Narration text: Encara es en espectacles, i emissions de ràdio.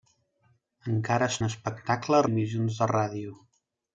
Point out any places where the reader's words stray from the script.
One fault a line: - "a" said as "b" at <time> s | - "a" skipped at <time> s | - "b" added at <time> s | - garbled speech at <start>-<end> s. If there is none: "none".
none